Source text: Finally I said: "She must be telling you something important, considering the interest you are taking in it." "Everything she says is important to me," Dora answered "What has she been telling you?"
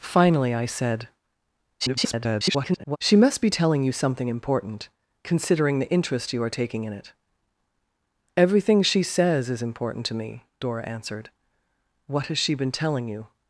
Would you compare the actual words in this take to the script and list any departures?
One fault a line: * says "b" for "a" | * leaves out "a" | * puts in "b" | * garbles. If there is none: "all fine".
* garbles